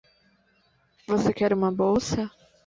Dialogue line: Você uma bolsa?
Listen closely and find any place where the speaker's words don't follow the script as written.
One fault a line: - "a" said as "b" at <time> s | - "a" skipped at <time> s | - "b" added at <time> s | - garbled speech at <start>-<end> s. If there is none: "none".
- "quer" added at 1.3 s